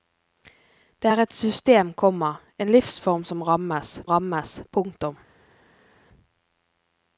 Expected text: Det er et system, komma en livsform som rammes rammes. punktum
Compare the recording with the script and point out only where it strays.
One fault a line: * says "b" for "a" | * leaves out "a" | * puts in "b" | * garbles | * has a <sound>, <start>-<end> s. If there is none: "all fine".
all fine